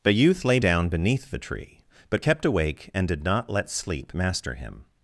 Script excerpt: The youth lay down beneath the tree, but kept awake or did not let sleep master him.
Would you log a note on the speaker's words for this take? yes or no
yes